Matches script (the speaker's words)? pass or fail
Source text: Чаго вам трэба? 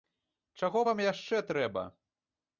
fail